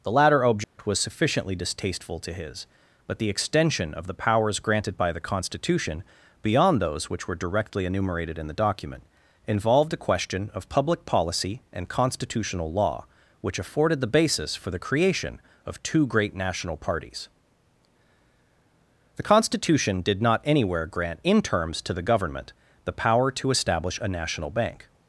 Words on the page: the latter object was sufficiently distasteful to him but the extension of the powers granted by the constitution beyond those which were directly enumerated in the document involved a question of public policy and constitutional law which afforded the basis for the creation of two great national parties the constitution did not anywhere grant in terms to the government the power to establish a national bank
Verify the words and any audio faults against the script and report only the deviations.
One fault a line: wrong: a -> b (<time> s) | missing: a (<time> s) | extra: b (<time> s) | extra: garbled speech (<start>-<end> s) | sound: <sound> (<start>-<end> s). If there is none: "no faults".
sound: dropout (0.6-0.8 s)
wrong: him -> his (2.3 s)